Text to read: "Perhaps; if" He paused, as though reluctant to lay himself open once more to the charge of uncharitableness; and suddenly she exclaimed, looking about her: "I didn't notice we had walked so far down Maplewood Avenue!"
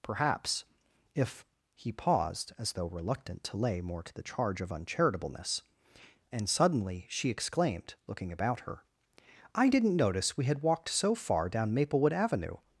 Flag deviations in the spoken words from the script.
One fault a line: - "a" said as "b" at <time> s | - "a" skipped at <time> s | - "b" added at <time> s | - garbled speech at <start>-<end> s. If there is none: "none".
- "himself open once" skipped at 3.8 s